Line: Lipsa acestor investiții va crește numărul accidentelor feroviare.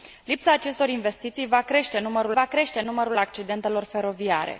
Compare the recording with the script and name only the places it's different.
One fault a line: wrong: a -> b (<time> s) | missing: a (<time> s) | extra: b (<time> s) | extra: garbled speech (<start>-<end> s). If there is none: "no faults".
extra: va crește numărul (2.3 s)